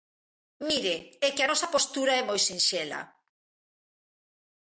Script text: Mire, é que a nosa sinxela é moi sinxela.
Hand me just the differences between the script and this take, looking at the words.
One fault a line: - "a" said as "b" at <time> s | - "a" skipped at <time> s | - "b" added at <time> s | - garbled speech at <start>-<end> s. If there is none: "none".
- "sinxela" said as "postura" at 1.7 s